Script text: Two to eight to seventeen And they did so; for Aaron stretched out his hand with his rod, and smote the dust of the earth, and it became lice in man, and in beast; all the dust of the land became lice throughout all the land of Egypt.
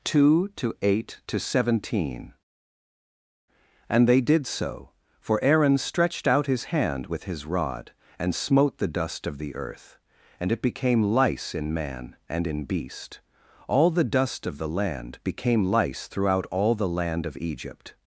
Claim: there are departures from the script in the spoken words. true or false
false